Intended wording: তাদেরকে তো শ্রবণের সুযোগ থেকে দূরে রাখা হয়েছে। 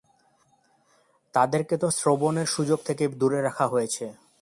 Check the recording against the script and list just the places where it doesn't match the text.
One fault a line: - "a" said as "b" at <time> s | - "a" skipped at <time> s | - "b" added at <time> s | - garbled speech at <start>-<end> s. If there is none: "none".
none